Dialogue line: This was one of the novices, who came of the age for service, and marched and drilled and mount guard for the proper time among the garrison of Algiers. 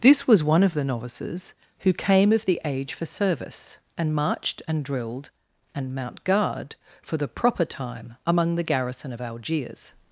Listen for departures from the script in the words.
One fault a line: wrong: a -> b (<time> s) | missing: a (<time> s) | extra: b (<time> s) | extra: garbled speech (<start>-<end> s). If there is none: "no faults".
no faults